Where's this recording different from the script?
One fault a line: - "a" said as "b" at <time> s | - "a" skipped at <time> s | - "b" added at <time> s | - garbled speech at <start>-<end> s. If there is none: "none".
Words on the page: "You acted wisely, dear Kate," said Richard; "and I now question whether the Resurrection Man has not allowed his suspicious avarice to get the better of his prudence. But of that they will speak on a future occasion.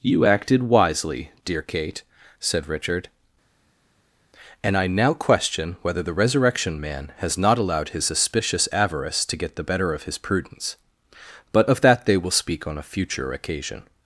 none